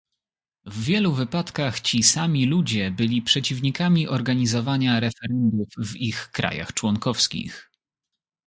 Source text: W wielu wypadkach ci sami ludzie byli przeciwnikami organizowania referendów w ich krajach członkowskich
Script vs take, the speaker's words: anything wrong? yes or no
no